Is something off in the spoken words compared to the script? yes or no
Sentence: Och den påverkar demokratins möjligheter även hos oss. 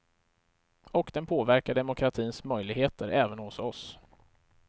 no